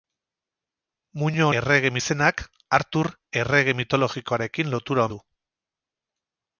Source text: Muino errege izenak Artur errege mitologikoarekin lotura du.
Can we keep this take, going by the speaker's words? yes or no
yes